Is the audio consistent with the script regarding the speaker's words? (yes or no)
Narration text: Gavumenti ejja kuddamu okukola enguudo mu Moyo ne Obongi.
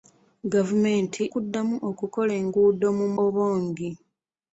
no